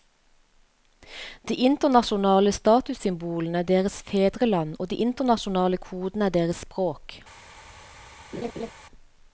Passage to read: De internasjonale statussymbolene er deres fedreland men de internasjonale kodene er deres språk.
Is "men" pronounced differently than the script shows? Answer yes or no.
yes